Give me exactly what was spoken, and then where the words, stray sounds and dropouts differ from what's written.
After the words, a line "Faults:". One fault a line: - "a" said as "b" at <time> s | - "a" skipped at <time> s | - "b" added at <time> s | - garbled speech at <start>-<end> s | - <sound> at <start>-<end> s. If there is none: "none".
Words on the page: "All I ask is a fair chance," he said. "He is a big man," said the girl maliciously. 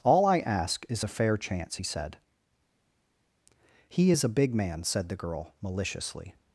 "All I ask is a fair chance," he said. "He is a big man," said the girl maliciously.
Faults:
none